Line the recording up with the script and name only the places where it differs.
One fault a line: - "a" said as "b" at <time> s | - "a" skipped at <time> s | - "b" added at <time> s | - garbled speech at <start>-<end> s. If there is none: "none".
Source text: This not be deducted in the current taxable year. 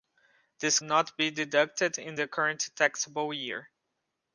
none